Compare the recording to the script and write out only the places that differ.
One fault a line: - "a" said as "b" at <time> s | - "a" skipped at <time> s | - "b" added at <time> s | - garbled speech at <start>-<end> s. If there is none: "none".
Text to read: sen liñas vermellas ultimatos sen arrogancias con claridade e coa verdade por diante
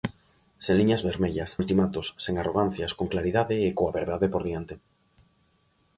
none